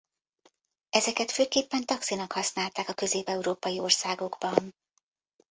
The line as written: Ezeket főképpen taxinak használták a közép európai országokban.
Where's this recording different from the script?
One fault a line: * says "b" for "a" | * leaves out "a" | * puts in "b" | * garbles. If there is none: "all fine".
all fine